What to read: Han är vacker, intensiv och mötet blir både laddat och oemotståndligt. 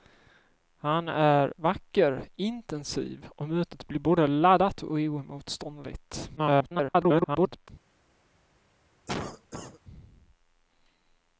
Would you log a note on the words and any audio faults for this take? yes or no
yes